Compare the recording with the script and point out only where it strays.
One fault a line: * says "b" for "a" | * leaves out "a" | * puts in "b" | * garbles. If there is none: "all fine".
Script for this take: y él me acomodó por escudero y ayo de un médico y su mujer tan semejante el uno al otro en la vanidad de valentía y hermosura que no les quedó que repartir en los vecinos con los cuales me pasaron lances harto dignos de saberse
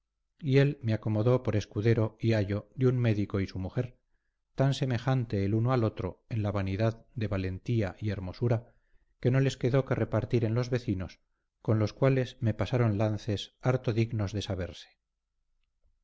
all fine